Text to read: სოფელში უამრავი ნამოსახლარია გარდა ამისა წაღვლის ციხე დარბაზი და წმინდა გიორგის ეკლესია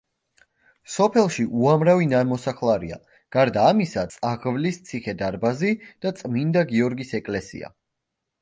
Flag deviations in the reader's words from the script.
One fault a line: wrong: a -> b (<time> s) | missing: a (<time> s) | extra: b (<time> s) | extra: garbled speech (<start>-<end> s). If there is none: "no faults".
no faults